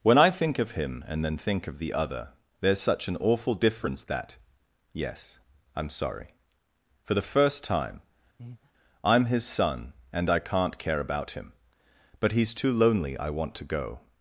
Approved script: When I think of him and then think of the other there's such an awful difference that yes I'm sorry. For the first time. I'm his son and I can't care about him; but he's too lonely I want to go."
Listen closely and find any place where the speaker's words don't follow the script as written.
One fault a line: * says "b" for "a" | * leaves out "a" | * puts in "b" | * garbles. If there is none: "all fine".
all fine